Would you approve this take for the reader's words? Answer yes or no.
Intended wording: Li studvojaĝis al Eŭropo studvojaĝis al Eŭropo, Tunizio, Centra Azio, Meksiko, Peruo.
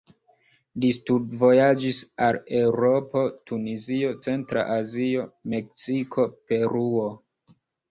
no